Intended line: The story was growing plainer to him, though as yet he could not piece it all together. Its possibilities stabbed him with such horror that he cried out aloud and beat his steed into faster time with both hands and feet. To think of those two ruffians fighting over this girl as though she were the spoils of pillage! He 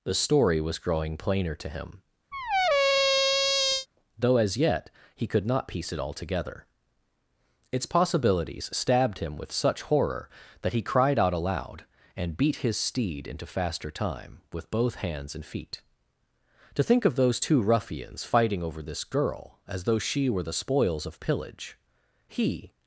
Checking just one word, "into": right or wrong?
right